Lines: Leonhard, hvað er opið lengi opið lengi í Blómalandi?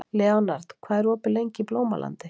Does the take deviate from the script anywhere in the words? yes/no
yes